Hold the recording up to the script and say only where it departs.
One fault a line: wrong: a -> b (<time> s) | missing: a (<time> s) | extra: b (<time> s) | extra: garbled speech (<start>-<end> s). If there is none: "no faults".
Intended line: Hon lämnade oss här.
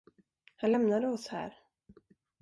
wrong: Hon -> Han (0.6 s)